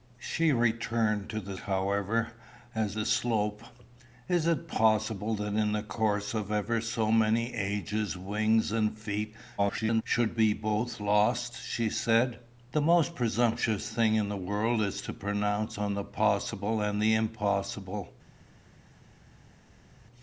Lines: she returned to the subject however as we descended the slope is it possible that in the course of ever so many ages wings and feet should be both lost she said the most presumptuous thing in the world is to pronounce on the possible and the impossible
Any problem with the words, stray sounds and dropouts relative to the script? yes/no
yes